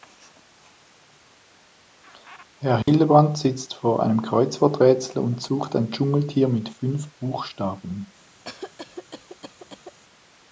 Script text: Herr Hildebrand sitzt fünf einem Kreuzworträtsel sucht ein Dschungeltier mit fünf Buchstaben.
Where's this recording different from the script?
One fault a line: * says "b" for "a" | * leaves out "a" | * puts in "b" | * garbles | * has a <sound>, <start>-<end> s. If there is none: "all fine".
* has a dropout, 2.8-2.9 s
* says "vor" for "fünf"
* puts in "und"
* has a cough, 8.4-10.0 s